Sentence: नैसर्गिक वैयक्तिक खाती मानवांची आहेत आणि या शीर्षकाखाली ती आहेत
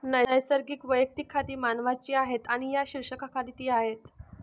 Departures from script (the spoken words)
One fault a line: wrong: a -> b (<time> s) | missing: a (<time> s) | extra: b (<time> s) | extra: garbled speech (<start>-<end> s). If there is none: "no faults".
no faults